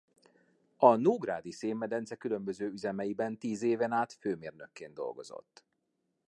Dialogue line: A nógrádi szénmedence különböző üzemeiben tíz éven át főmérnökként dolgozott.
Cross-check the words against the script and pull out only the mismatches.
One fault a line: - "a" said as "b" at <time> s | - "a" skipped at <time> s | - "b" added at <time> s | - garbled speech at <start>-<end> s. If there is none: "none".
none